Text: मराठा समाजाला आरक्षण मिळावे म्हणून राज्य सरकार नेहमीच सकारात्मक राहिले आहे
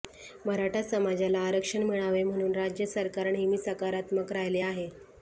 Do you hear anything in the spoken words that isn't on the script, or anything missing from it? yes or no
no